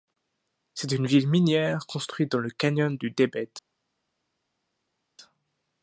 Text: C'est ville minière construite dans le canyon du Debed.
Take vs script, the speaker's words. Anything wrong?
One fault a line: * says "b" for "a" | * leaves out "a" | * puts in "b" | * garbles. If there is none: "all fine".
* puts in "une"